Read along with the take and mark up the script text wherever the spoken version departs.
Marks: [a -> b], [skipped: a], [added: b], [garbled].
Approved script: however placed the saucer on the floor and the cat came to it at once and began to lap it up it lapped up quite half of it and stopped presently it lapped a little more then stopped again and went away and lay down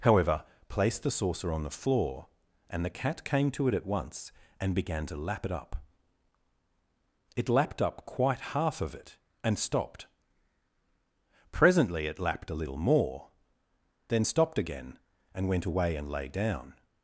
however placed the saucer on the floor and the cat came to it at once and began to lap it up it lapped up quite half of it and stopped presently it lapped a little more then stopped again and went away and lay down